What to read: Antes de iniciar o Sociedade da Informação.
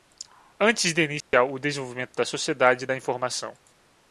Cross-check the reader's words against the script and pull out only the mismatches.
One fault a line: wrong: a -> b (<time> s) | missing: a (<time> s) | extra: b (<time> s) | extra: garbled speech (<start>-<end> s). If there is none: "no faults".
extra: desenvolvimento da (1.6 s)